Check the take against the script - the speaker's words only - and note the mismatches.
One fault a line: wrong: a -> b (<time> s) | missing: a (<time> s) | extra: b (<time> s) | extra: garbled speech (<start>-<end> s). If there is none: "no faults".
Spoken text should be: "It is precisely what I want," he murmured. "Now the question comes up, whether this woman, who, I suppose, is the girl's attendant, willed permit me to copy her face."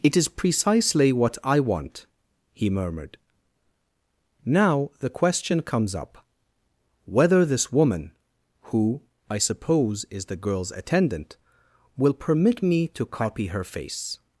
wrong: willed -> will (12.0 s)